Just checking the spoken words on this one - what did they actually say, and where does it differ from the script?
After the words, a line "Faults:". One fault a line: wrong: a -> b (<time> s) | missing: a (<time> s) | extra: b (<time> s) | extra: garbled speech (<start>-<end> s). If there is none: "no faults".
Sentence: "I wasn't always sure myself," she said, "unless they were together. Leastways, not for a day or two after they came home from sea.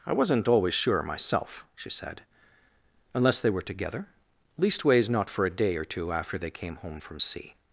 "I wasn't always sure myself," she said, "unless they were together. Leastways, not for a day or two after they came home from sea.
Faults:
no faults